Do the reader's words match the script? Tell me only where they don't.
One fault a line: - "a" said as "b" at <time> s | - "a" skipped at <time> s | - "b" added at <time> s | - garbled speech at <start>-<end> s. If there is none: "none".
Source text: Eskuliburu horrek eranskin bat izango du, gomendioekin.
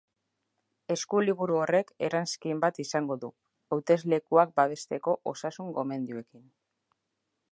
- "hauteslekuak babesteko osasun" added at 3.8 s